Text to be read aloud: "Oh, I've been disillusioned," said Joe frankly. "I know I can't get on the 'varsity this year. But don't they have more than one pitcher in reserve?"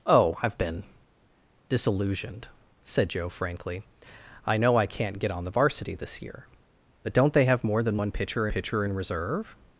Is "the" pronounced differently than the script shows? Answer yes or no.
no